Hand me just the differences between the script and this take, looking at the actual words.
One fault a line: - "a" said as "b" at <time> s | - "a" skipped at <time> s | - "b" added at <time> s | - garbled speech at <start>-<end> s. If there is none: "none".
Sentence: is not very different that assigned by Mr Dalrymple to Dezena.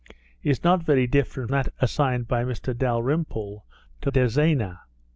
none